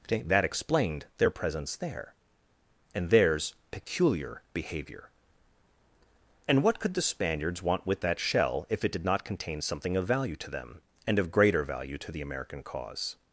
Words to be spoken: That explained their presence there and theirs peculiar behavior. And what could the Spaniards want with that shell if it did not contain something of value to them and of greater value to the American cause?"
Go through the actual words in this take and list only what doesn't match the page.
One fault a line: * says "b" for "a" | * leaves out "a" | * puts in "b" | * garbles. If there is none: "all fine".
all fine